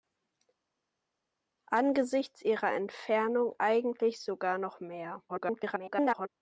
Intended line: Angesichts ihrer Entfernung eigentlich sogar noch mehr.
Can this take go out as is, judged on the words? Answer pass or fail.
fail